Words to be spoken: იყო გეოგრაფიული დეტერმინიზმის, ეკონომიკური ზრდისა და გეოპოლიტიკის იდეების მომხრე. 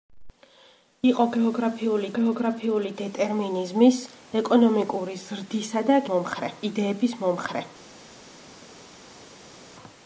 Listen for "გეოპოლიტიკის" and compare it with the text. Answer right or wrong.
wrong